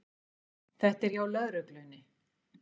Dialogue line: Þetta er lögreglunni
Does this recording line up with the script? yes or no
no